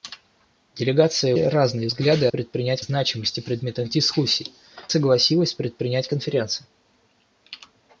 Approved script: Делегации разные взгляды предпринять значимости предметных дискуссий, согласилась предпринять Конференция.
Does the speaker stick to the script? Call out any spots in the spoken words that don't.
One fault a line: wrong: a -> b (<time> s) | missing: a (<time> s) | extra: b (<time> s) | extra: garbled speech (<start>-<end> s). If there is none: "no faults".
no faults